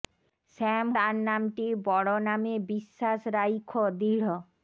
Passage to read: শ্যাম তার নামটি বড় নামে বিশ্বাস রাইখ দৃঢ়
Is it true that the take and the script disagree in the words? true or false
false